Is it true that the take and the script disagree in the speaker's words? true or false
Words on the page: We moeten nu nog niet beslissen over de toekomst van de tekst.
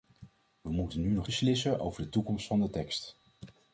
true